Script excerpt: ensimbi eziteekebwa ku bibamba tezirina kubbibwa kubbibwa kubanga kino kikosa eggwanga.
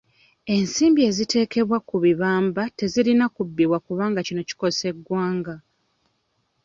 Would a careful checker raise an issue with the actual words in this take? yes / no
yes